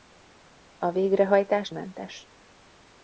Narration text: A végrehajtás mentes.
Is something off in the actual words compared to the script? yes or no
no